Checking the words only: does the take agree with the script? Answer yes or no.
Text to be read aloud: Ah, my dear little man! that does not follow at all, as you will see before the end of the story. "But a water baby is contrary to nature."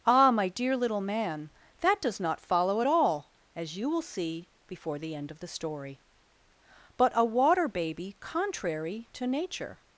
no